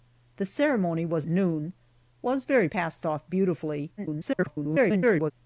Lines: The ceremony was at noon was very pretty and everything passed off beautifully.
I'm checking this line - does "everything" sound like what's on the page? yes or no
no